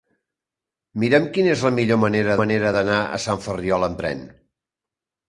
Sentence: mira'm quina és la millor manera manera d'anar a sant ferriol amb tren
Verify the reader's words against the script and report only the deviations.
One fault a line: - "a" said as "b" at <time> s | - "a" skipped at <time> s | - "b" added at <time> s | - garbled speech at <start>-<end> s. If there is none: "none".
none